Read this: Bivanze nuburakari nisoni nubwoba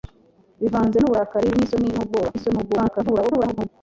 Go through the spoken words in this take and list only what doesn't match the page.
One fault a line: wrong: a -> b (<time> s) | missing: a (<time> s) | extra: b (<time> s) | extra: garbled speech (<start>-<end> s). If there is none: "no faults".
extra: garbled speech (2.3-3.7 s)